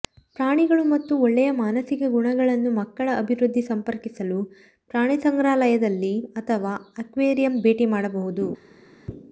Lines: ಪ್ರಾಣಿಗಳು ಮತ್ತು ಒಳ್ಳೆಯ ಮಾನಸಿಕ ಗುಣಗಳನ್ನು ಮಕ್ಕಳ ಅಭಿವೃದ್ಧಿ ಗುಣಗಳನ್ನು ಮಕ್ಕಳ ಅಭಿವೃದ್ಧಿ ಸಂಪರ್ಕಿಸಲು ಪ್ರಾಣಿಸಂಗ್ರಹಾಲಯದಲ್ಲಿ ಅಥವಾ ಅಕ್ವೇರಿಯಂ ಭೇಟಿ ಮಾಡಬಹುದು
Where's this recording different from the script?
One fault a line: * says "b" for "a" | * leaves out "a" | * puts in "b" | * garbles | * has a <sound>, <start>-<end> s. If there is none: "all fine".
* leaves out "ಗುಣಗಳನ್ನು ಮಕ್ಕಳ ಅಭಿವೃದ್ಧಿ"